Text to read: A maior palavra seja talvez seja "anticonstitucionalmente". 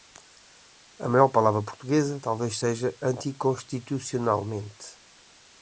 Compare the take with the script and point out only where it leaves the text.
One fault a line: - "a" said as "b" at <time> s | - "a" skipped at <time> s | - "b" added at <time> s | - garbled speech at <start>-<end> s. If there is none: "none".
- "seja" said as "portuguesa" at 1.6 s